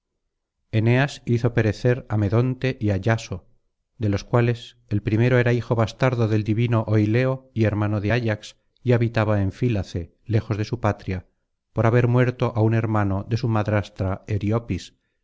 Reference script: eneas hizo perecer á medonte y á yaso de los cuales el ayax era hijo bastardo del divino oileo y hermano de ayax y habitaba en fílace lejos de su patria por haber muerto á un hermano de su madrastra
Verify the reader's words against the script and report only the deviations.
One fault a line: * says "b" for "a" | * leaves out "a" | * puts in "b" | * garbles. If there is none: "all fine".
* says "primero" for "ayax"